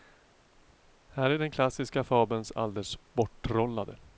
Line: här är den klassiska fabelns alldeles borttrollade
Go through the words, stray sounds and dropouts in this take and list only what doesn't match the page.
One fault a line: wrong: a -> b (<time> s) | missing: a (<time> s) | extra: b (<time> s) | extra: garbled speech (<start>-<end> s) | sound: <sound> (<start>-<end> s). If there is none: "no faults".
no faults